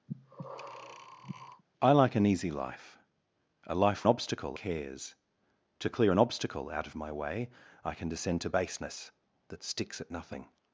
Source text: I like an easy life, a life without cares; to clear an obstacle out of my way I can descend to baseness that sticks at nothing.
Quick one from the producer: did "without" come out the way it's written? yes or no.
no